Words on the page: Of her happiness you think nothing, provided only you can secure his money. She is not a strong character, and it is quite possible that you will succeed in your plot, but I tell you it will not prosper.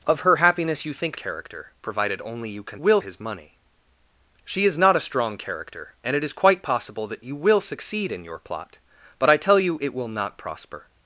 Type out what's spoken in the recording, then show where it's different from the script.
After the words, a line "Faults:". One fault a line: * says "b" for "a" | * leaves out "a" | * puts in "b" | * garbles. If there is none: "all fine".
Of her happiness you think character, provided only you can will his money. She is not a strong character, and it is quite possible that you will succeed in your plot, but I tell you it will not prosper.
Faults:
* says "character" for "nothing"
* says "will" for "secure"